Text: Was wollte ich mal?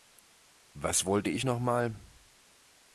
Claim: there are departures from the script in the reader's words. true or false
true